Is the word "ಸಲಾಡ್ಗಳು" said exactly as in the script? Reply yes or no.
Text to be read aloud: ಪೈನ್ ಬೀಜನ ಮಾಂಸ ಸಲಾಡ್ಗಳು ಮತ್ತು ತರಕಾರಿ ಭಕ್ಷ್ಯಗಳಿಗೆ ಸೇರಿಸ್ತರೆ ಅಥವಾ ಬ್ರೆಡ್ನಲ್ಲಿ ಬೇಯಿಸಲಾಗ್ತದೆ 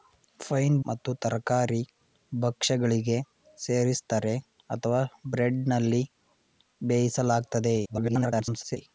no